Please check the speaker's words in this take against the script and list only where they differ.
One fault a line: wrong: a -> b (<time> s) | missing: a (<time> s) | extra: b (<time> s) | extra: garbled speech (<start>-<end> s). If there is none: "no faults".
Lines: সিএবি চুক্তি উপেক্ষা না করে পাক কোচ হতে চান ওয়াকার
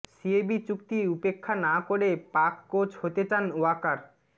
no faults